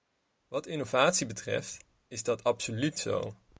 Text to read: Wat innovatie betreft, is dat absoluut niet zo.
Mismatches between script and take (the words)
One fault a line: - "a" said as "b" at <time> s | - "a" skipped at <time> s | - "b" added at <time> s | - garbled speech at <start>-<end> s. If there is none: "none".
- "niet" skipped at 3.0 s